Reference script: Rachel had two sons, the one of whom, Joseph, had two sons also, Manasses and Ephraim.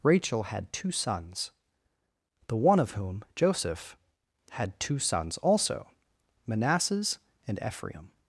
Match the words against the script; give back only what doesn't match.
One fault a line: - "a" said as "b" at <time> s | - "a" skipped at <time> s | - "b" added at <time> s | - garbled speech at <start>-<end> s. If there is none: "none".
none